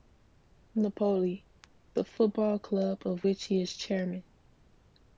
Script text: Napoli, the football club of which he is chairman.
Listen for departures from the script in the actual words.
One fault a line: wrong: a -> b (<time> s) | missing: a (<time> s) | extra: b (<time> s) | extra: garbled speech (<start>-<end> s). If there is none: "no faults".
no faults